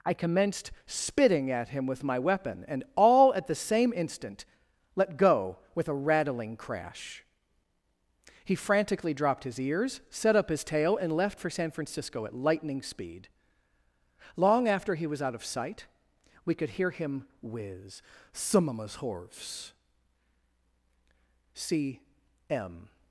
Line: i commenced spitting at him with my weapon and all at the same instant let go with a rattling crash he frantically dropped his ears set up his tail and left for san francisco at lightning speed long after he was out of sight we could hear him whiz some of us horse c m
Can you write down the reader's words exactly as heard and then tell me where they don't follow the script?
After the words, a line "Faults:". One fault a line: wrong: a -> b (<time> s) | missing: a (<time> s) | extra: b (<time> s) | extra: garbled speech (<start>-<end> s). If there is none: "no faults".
i commenced spitting at him with my weapon and all at the same instant let go with a rattling crash he frantically dropped his ears set up his tail and left for san francisco at lightning speed long after he was out of sight we could hear him whiz some of us horse c m
Faults:
no faults